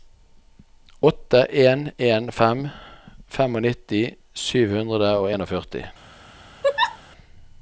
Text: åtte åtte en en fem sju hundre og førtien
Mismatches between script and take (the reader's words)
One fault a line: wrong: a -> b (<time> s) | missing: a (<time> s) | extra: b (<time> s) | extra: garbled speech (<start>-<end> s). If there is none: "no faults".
missing: åtte (1.4 s)
extra: nittifem (3.7 s)